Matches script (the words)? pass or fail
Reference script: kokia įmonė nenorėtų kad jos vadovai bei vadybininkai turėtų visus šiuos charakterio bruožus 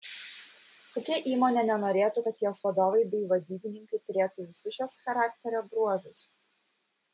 pass